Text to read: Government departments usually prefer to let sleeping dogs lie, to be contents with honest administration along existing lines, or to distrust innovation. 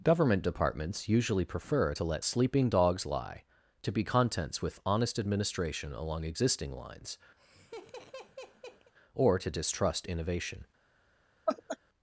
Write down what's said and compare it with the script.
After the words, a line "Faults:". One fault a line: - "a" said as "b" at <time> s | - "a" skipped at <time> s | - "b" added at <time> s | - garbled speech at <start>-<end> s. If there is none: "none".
Government departments usually prefer to let sleeping dogs lie, to be contents with honest administration along existing lines, or to distrust innovation.
Faults:
none